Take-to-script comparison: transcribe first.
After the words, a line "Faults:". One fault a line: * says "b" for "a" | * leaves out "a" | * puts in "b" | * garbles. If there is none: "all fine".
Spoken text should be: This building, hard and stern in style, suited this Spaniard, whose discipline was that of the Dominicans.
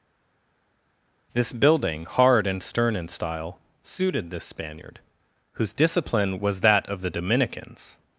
This building, hard and stern in style, suited this Spaniard, whose discipline was that of the Dominicans.
Faults:
all fine